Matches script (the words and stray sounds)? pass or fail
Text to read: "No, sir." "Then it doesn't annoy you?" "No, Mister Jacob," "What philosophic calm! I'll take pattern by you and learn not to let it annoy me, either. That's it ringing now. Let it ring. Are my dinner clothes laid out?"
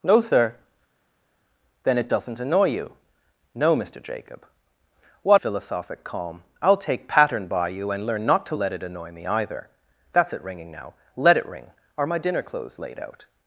pass